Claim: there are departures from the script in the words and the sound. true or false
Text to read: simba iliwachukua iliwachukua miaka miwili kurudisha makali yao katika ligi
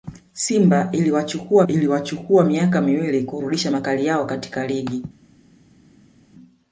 false